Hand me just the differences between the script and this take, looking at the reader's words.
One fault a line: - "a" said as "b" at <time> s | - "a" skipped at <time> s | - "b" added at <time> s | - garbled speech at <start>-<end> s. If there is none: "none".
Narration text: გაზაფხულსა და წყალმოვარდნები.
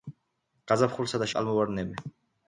none